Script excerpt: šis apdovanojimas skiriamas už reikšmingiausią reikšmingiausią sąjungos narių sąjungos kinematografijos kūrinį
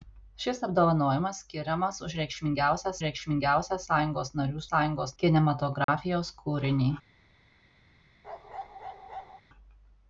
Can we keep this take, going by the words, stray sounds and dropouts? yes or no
no